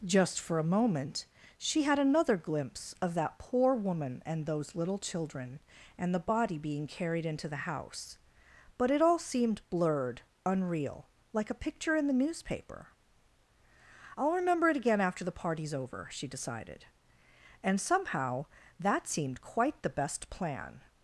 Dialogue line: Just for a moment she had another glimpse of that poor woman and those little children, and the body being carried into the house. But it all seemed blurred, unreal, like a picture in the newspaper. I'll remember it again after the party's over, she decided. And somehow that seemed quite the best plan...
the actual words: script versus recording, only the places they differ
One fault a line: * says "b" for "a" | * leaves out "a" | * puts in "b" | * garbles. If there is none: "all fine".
all fine